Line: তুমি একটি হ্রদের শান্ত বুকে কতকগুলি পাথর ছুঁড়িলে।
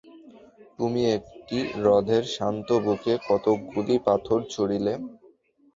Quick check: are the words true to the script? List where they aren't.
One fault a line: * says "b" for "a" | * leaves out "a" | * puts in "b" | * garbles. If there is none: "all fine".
all fine